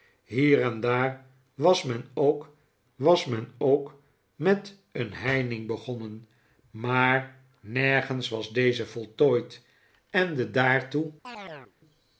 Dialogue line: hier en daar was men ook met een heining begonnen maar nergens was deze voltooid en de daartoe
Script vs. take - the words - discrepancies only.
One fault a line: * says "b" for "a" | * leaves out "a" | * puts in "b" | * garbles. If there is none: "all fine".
* puts in "was men ook"